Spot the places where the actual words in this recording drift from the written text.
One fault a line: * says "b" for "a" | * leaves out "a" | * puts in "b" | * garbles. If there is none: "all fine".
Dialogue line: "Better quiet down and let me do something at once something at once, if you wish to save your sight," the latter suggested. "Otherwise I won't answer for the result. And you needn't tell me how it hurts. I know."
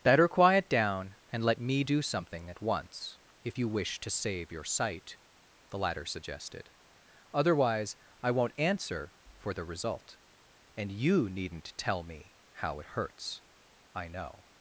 * leaves out "something at once"